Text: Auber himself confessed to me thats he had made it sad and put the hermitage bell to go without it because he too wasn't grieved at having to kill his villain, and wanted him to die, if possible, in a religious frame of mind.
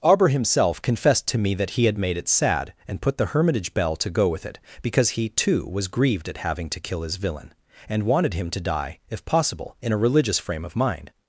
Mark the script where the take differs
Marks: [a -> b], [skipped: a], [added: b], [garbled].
Auber himself confessed to me [thats -> that] he had made it sad and put the hermitage bell to go [without -> with] it because he too [wasn't -> was] grieved at having to kill his villain, and wanted him to die, if possible, in a religious frame of mind.